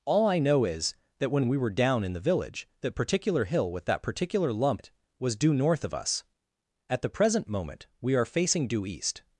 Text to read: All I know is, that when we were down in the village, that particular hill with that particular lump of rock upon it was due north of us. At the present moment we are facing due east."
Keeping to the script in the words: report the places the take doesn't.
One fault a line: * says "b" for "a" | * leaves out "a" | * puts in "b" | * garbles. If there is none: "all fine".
* leaves out "of rock upon"